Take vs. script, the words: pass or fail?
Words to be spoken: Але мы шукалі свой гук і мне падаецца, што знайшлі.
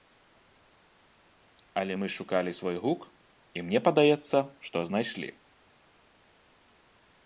pass